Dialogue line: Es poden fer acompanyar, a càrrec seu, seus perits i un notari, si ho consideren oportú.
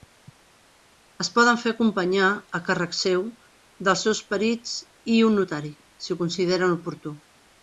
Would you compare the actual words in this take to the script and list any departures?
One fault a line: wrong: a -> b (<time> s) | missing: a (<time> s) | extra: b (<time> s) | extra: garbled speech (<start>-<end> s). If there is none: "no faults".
extra: dels (3.9 s)